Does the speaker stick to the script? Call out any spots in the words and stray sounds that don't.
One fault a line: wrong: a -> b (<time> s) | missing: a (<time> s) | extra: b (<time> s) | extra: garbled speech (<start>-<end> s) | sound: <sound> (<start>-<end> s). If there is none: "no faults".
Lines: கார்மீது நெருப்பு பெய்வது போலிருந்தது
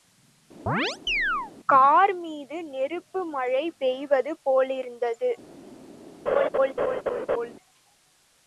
sound: chirp (0.7-1.5 s)
extra: மழை (3.3 s)
sound: laugh (6.3-7.5 s)